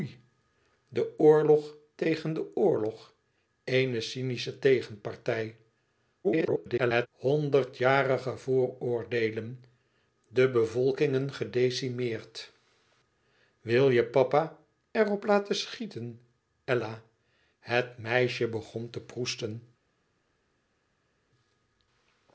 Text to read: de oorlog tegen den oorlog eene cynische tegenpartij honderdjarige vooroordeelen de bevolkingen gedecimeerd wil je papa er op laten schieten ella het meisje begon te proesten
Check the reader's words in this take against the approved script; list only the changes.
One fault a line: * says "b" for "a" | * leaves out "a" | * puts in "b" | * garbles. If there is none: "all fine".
* garbles